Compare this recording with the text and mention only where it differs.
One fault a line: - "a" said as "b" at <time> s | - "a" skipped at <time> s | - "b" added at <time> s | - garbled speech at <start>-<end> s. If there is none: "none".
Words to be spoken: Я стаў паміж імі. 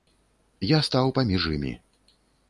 none